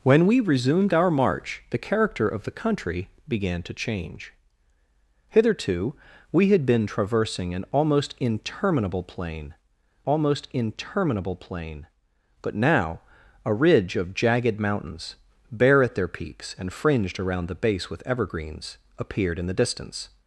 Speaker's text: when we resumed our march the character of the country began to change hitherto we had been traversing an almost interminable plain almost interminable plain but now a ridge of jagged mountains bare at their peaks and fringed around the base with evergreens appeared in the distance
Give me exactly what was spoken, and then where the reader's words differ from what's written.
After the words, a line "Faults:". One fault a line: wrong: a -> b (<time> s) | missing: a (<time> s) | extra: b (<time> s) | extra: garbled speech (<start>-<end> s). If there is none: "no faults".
when we resumed our march the character of the country began to change hitherto we had been traversing an almost interminable plain almost interminable plain but now a ridge of jagged mountains bare at their peaks and fringed around the base with evergreens appeared in the distance
Faults:
no faults